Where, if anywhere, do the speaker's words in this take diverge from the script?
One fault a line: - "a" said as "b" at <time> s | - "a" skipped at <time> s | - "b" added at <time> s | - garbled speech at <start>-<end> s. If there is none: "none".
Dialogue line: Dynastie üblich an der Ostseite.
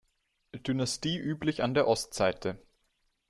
none